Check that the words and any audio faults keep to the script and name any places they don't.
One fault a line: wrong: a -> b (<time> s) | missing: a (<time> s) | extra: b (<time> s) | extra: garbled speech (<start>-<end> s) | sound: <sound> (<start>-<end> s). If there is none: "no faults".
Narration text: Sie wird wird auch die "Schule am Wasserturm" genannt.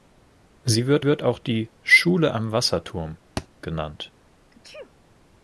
sound: thud (3.4-3.5 s)
sound: sneeze (4.5-4.9 s)